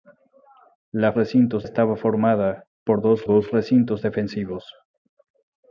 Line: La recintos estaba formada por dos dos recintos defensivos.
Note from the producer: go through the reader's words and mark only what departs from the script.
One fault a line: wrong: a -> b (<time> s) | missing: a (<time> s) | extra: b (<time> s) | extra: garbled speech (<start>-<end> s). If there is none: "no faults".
no faults